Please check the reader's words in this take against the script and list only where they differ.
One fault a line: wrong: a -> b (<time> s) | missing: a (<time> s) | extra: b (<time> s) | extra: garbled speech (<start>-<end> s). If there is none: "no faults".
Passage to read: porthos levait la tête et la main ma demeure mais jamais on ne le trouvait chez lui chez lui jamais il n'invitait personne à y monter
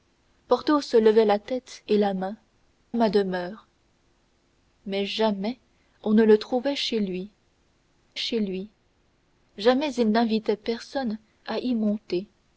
no faults